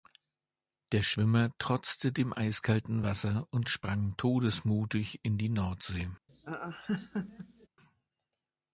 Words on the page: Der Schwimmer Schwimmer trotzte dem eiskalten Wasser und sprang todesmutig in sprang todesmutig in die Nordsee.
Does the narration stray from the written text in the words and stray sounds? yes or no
yes